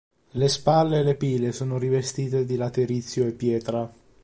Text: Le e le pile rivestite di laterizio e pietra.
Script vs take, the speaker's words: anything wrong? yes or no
yes